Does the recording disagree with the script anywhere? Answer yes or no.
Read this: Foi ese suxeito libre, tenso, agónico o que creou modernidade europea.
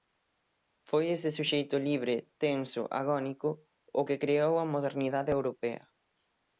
yes